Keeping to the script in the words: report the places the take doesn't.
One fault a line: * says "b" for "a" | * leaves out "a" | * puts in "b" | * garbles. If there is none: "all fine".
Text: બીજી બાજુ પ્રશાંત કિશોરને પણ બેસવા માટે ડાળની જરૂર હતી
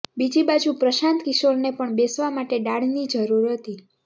all fine